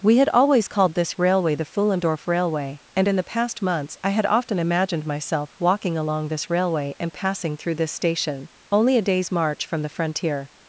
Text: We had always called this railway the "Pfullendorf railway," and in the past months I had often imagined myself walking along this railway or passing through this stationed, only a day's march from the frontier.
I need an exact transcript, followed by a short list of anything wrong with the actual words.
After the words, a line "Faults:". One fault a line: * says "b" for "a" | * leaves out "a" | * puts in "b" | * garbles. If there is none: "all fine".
We had always called this railway the "Pfullendorf railway," and in the past months I had often imagined myself walking along this railway and passing through this station, only a day's march from the frontier.
Faults:
* says "and" for "or"
* says "station" for "stationed"